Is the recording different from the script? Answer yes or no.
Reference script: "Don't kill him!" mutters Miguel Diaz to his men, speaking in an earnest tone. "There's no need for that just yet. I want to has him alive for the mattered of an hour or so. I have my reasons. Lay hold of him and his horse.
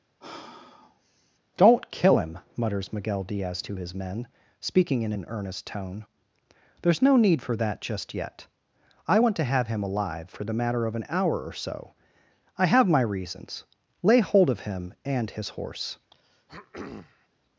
yes